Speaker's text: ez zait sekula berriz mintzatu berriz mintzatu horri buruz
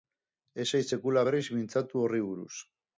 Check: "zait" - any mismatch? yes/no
no